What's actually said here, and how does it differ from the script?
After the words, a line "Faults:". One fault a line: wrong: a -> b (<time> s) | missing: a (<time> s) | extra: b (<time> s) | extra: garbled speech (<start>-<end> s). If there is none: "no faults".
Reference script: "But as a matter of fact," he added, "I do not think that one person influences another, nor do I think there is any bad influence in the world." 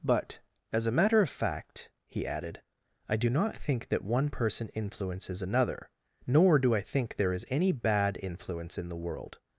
"But as a matter of fact," he added, "I do not think that one person influences another, nor do I think there is any bad influence in the world."
Faults:
no faults